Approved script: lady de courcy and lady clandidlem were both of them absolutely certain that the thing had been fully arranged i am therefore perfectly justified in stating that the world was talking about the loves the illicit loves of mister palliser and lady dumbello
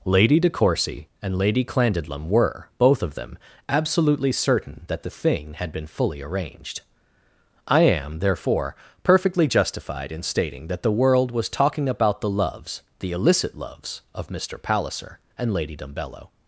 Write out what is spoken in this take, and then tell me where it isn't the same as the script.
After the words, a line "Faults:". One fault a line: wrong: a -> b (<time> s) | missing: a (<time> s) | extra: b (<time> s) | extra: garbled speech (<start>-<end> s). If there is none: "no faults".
lady de courcy and lady clandidlem were both of them absolutely certain that the thing had been fully arranged i am therefore perfectly justified in stating that the world was talking about the loves the illicit loves of mister palliser and lady dumbello
Faults:
no faults